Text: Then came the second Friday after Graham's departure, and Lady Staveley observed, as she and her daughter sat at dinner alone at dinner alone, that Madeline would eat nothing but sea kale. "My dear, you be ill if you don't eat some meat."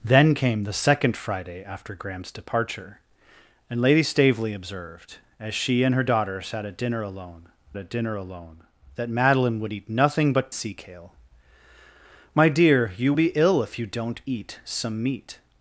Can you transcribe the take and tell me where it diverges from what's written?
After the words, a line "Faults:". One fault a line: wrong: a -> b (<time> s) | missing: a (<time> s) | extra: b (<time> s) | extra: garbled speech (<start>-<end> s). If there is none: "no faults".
Then came the second Friday after Graham's departure, and Lady Staveley observed, as she and her daughter sat at dinner alone at dinner alone, that Madeline would eat nothing but sea kale. "My dear, you be ill if you don't eat some meat."
Faults:
no faults